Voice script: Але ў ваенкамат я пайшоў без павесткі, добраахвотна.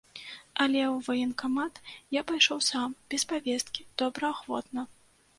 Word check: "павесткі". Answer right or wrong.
right